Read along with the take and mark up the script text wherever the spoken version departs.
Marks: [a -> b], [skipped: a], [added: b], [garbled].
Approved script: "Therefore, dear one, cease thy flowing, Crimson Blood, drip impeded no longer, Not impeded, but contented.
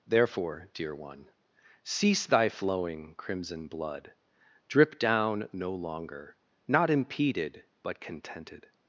"Therefore, dear one, cease thy flowing, Crimson Blood, drip [impeded -> down] no longer, Not impeded, but contented.